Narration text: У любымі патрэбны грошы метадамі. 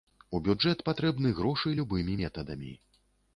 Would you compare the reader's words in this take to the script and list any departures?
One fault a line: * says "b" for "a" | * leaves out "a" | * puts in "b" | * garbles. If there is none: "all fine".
* says "бюджэт" for "любымі"
* puts in "любымі"